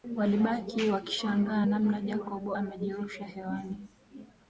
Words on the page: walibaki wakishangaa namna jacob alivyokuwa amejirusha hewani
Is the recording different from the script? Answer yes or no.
yes